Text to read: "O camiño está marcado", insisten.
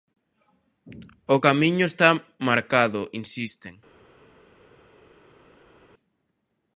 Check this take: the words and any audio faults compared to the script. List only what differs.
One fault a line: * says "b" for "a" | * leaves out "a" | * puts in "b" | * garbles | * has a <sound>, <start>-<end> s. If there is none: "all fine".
all fine